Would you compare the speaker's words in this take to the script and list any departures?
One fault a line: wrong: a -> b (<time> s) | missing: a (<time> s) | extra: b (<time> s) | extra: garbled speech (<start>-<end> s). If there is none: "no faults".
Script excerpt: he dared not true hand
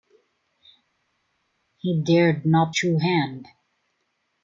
no faults